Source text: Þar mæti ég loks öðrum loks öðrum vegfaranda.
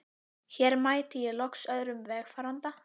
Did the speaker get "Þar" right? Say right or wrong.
wrong